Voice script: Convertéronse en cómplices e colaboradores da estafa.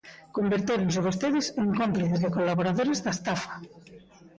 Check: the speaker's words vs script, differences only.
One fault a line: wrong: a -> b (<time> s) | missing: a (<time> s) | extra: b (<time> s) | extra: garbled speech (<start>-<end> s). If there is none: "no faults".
extra: vostedes (1.1 s)